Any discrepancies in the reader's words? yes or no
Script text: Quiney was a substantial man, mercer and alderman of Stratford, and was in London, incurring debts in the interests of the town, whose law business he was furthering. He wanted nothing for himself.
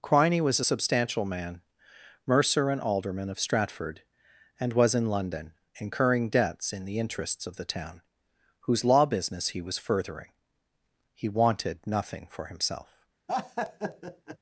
no